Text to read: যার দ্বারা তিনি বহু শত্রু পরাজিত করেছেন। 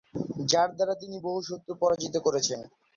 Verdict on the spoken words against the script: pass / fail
pass